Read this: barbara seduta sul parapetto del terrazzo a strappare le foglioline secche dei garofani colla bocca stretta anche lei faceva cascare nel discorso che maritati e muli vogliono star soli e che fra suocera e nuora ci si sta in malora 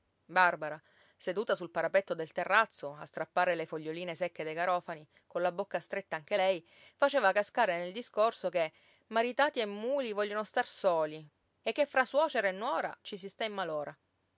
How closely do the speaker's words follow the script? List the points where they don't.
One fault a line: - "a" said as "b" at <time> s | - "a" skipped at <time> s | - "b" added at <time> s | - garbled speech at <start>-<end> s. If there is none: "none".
none